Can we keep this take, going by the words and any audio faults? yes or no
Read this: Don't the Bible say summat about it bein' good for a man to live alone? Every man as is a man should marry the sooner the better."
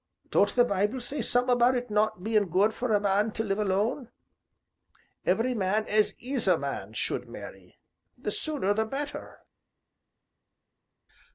no